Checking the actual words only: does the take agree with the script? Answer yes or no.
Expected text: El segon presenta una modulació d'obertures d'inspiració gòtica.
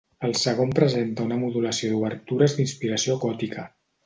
yes